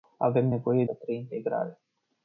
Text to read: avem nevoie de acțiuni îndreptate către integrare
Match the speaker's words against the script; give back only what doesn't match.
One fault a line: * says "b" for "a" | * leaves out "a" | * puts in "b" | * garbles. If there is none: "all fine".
* leaves out "de acțiuni îndreptate"